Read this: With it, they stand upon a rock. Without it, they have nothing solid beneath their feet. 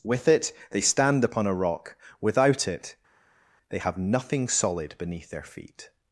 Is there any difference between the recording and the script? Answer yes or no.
no